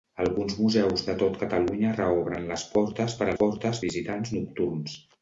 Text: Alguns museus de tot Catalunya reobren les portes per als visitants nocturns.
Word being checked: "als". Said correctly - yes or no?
no